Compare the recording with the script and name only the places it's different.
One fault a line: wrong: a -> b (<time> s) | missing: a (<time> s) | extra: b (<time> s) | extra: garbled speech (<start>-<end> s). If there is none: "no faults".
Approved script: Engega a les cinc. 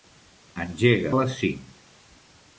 no faults